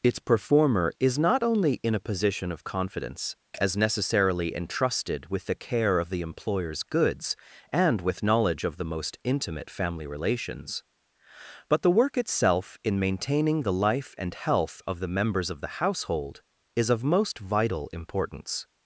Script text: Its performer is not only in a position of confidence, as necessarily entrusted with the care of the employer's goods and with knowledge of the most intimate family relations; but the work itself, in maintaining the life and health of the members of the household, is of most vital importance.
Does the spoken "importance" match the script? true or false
true